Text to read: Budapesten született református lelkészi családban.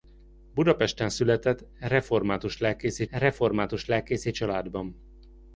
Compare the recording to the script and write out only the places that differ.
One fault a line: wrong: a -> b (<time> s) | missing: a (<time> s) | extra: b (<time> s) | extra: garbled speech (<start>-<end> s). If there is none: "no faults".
extra: református lelkészi (3.1 s)